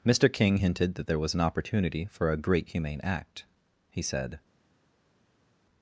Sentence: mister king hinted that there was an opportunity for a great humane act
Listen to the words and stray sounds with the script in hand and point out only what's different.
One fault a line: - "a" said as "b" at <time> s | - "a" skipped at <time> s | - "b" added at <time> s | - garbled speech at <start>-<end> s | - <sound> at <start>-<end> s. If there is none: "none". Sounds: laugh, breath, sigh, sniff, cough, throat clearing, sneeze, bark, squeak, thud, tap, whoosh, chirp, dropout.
- "he said" added at 3.9 s